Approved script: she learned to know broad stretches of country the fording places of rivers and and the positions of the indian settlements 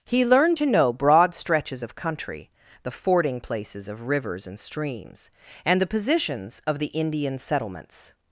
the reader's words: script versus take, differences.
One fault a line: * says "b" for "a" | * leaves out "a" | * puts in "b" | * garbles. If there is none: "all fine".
* says "he" for "she"
* puts in "streams"